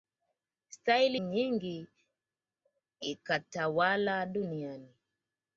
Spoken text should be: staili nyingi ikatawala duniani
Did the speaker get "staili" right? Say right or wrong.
right